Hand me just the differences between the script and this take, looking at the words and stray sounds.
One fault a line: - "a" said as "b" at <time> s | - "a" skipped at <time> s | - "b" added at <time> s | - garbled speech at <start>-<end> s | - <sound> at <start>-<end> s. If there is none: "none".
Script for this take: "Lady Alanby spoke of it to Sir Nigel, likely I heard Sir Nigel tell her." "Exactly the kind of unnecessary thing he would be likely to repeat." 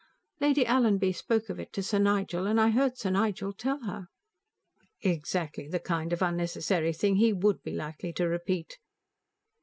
- "likely" said as "and" at 2.5 s